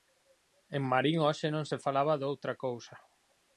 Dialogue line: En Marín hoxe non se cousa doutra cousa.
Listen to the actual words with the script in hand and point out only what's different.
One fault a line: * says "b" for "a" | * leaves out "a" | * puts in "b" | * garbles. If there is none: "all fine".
* says "falaba" for "cousa"